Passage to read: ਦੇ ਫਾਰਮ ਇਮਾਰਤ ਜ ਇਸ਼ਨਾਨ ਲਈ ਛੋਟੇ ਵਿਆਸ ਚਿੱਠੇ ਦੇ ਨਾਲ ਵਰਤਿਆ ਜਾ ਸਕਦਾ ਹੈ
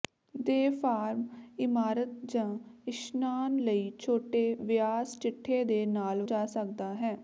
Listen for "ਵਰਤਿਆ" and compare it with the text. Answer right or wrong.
wrong